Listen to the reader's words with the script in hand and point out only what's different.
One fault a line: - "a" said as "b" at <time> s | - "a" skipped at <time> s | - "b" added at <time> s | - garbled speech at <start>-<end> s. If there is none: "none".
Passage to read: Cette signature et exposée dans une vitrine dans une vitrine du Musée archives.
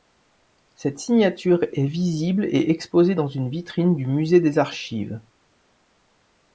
- "est visible" added at 1.7 s
- "dans une vitrine" skipped at 4.0 s
- "des" added at 4.4 s